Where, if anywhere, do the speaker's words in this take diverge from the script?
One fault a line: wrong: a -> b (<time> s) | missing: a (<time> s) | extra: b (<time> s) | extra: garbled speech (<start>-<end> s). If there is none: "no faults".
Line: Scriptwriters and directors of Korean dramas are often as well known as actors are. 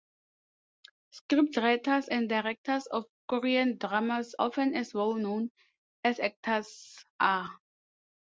missing: are (4.3 s)